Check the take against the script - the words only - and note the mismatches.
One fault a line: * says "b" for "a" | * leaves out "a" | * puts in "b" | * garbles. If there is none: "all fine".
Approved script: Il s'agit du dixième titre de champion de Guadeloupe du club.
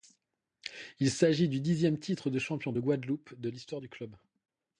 * puts in "de l'histoire"